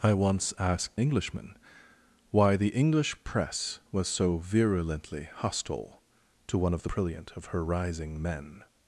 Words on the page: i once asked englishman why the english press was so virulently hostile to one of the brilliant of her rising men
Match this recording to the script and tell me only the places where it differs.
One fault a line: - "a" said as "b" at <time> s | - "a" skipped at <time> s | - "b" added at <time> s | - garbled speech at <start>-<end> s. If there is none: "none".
none